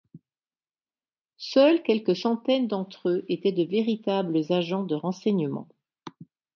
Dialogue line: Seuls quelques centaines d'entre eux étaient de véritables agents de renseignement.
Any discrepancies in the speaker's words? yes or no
no